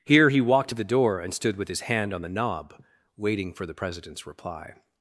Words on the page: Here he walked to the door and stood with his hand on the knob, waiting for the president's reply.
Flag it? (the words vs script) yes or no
no